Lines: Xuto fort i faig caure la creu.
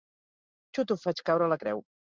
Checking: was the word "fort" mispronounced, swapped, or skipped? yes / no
yes